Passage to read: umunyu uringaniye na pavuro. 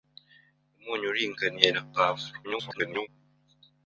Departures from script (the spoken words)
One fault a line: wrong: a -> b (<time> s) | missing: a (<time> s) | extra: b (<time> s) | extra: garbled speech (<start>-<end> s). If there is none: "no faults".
extra: garbled speech (2.4-3.1 s)